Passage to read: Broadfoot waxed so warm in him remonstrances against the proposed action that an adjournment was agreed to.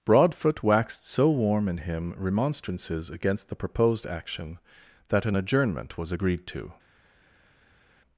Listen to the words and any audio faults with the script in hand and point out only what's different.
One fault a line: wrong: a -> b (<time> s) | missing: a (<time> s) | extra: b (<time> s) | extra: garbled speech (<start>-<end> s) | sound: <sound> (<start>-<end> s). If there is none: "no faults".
no faults